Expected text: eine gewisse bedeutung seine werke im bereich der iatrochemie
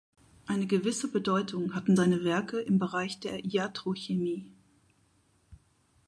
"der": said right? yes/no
yes